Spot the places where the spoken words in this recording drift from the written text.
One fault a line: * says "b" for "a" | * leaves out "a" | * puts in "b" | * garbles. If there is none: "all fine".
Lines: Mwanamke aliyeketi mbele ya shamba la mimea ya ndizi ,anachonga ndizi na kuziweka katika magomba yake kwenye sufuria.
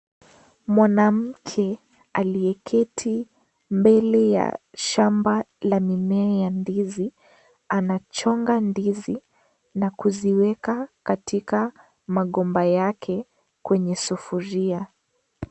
all fine